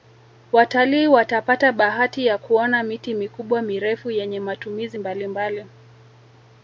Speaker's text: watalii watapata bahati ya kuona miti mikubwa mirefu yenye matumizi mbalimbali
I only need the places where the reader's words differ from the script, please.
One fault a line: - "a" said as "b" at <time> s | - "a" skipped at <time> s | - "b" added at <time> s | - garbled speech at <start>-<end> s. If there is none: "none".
none